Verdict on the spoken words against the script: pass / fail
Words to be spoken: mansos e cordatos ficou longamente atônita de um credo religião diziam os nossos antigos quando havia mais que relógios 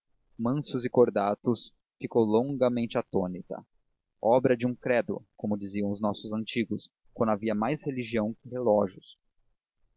fail